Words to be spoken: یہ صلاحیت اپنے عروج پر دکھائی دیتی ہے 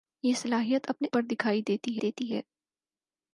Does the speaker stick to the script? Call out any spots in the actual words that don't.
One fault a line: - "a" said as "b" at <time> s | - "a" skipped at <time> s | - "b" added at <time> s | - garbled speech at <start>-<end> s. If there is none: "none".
- "عروج" skipped at 1.1 s
- "دیتی" added at 2.0 s